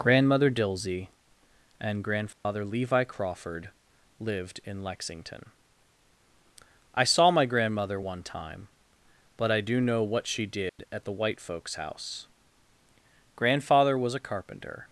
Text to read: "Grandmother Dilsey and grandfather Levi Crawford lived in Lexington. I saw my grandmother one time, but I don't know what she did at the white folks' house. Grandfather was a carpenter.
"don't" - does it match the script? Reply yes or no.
no